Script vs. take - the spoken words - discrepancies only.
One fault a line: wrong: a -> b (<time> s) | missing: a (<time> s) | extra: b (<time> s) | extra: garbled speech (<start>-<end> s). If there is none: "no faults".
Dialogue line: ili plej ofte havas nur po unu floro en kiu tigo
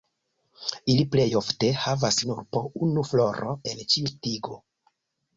wrong: kiu -> ĉiu (3.9 s)